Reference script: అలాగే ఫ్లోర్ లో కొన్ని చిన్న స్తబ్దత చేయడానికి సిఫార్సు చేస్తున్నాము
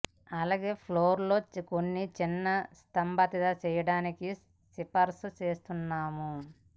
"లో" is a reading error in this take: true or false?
false